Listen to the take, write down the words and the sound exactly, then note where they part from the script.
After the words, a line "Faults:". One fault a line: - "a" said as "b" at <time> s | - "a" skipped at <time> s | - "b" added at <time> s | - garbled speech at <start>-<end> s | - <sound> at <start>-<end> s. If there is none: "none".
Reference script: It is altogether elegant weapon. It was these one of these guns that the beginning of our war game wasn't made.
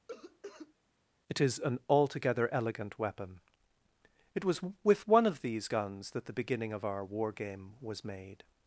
It is an altogether elegant weapon. It was with one of these guns that the beginning of our war game was made.
Faults:
- cough at 0.1-0.7 s
- "an" added at 1.6 s
- "these" said as "with" at 4.8 s
- "wasn't" said as "was" at 7.8 s